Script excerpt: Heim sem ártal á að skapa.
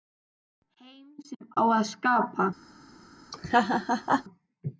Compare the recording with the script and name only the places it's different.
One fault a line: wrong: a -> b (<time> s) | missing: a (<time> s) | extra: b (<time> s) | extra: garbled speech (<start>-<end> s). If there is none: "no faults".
missing: ártal (1.4 s)